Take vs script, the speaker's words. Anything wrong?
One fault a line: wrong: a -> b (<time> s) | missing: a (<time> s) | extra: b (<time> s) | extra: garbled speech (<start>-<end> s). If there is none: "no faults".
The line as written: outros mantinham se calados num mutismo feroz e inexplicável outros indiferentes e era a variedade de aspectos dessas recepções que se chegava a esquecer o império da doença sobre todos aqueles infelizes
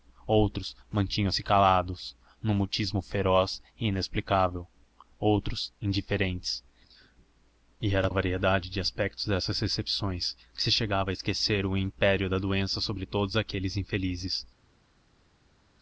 no faults